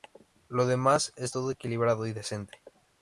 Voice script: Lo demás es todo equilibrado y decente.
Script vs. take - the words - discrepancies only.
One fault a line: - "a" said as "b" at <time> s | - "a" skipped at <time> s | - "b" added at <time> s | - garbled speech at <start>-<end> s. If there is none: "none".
none